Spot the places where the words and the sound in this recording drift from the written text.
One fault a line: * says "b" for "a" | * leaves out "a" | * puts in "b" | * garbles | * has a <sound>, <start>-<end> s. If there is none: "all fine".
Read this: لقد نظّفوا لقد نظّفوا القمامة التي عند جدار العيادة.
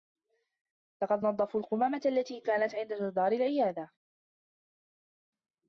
* leaves out "لقد نظّفوا"
* puts in "كانت"